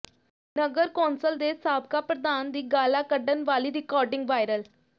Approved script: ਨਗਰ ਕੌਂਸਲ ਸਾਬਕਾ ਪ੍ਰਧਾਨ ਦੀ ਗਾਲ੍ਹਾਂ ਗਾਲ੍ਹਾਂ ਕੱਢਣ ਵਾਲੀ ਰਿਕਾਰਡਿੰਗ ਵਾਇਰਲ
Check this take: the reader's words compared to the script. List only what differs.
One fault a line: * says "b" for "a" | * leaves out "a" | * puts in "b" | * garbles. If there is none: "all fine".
* puts in "ਦੇ"
* leaves out "ਗਾਲ੍ਹਾਂ"